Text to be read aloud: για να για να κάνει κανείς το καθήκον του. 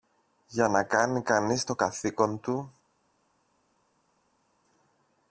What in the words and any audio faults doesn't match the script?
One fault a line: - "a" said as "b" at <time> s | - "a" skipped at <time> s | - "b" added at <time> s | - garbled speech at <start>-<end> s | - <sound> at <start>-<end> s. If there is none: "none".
- "για να" skipped at 0.8 s